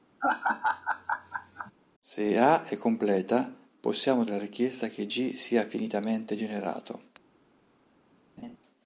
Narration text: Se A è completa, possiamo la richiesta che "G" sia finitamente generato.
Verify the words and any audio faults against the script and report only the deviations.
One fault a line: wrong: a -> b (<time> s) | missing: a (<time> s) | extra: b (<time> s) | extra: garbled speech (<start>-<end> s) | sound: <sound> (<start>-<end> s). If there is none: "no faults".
sound: laugh (0.2-1.7 s)
sound: laugh (8.4-8.6 s)